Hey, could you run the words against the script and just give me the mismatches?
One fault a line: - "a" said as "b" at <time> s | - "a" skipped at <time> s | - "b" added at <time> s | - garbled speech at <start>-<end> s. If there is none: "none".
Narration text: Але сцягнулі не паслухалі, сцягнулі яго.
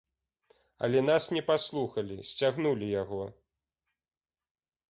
- "сцягнулі" said as "нас" at 1.1 s